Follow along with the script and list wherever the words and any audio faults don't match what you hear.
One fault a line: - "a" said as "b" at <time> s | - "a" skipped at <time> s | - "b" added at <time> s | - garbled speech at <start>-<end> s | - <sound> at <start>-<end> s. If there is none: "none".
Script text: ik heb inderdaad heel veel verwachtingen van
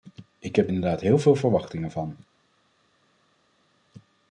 none